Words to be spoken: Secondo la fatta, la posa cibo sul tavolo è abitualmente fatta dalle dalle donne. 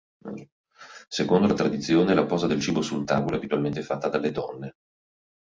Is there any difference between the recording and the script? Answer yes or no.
yes